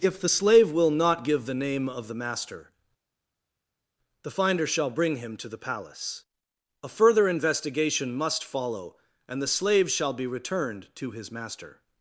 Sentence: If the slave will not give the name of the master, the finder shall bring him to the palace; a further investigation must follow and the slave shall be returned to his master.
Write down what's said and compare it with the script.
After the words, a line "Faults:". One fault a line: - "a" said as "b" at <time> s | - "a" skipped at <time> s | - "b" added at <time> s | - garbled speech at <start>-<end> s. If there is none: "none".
If the slave will not give the name of the master, the finder shall bring him to the palace; a further investigation must follow and the slave shall be returned to his master.
Faults:
none